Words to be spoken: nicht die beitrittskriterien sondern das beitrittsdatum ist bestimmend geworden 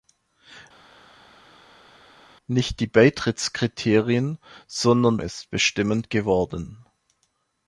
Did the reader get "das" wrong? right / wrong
wrong